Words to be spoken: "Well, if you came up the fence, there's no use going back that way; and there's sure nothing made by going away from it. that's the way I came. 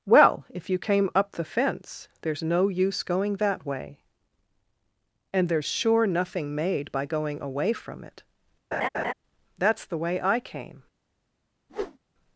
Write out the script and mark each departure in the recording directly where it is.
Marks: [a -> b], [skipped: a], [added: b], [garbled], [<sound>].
"Well, if you came up the fence, there's no use going [skipped: back] that way; and there's sure nothing made by going away from it. [laugh] that's the way I came. [whoosh]